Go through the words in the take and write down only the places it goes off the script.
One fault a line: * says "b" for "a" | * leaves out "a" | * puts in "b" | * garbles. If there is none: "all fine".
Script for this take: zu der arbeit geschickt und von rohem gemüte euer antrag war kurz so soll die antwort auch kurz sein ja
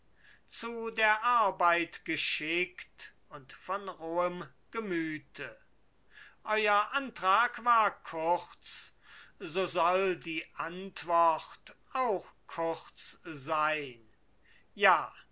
all fine